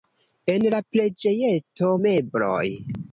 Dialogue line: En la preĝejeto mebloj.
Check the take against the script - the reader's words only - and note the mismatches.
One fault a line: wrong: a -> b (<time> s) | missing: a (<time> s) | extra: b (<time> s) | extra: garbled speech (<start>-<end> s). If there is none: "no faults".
no faults